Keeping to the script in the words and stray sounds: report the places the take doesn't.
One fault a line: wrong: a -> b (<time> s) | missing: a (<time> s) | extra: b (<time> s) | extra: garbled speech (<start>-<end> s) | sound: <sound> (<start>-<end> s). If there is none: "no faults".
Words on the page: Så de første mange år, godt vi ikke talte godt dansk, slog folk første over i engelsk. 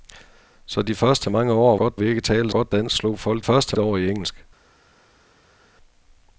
no faults